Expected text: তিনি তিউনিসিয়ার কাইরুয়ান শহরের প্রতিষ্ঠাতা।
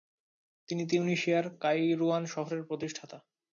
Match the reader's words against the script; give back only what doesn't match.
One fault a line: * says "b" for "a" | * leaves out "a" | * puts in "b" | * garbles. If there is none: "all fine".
all fine